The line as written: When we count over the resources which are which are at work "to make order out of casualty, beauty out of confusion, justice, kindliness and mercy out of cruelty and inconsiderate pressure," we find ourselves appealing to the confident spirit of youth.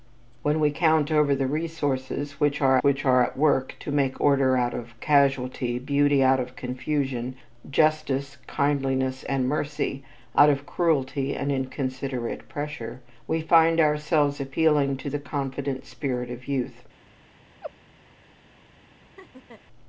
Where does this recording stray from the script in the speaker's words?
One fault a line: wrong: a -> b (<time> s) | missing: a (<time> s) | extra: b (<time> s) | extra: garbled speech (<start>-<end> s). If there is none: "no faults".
no faults